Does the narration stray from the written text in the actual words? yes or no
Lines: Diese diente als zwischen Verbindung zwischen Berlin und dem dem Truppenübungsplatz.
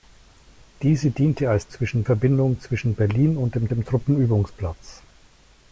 no